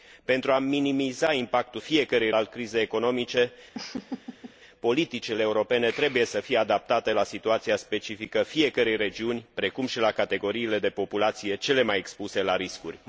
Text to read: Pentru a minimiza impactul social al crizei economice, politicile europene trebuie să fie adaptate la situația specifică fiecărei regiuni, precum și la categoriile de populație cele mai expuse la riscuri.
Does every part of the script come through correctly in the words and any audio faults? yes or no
no